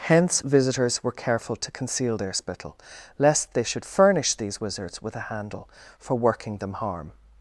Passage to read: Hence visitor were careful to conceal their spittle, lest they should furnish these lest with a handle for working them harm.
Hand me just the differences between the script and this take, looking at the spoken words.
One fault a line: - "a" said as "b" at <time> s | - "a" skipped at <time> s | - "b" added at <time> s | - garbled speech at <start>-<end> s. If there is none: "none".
- "visitor" said as "visitors" at 0.4 s
- "lest" said as "wizards" at 4.6 s